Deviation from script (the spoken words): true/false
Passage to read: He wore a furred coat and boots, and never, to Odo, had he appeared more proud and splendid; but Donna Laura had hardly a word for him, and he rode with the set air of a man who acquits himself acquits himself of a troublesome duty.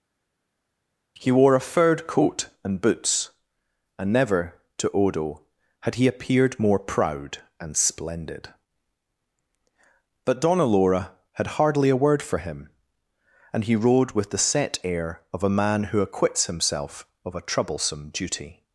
true